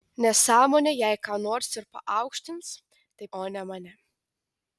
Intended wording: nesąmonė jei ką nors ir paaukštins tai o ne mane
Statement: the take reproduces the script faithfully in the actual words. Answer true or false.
true